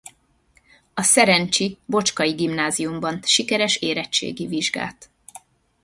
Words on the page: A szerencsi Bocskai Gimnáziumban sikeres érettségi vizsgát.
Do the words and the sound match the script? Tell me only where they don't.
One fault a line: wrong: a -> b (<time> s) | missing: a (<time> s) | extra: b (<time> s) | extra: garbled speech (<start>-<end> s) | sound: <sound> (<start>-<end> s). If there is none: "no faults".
no faults